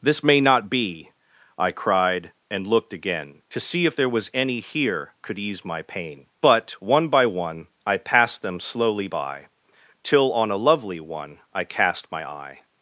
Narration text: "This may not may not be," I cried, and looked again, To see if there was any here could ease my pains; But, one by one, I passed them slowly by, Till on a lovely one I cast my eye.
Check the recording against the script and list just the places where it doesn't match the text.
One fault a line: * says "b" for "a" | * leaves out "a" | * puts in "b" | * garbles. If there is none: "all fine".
* leaves out "may not"
* says "pain" for "pains"